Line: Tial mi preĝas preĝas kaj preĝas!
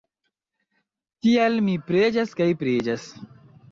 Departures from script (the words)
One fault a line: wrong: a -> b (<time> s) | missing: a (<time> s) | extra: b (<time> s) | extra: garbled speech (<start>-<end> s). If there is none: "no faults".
missing: preĝas (2.3 s)